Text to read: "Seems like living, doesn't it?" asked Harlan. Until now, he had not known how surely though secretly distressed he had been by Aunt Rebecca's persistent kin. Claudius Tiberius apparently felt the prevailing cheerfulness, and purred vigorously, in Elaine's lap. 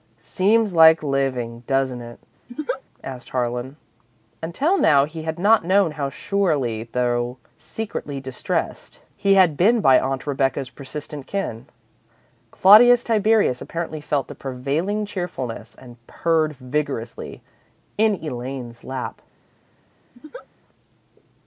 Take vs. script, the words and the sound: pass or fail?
fail